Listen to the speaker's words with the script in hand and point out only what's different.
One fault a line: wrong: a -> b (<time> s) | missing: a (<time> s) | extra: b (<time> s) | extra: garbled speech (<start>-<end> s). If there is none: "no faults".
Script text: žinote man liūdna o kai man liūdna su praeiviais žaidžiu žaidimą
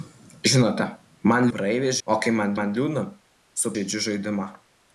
wrong: liūdna -> praeiviais (1.5 s)
extra: man (2.6 s)
missing: praeiviais (3.7 s)